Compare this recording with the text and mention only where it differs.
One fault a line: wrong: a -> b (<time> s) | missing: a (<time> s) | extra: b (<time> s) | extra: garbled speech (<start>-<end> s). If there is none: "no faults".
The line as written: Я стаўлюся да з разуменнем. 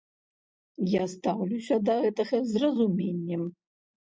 extra: гэтага (2.1 s)